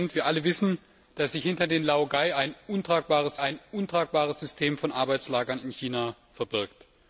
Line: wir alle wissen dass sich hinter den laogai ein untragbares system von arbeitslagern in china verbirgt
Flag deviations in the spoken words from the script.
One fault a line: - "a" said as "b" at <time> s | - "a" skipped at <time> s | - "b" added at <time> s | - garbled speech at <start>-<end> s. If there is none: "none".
- "ein untragbares" added at 3.4 s